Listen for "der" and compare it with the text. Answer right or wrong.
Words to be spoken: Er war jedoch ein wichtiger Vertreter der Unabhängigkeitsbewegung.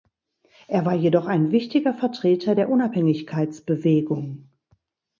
right